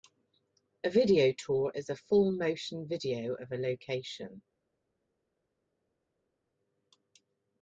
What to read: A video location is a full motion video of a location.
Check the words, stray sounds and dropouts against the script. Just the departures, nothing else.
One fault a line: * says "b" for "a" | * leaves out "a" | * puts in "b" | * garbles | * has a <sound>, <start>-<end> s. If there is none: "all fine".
* says "tour" for "location"